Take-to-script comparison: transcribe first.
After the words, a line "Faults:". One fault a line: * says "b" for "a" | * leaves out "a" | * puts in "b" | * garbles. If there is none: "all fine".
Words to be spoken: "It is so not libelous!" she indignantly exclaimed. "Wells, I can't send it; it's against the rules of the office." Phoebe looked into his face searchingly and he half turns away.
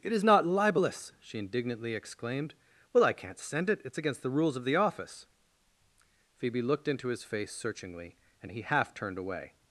"It is not libelous!" she indignantly exclaimed. "Well, I can't send it; it's against the rules of the office." Phoebe looked into his face searchingly and he half turned away.
Faults:
* leaves out "so"
* says "Well" for "Wells"
* says "turned" for "turns"